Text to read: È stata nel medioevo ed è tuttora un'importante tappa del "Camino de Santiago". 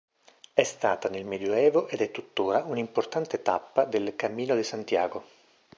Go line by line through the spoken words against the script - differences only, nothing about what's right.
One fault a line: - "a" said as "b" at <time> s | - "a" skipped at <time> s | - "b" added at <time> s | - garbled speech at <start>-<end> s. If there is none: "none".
none